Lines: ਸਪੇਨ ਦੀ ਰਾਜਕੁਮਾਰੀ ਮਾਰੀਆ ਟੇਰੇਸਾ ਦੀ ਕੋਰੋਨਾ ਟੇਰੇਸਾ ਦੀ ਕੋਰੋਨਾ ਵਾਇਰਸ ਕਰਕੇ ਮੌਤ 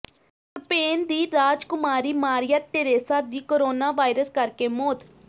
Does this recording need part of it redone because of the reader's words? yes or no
yes